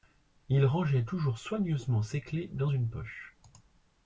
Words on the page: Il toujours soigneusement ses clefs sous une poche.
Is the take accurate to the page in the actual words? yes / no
no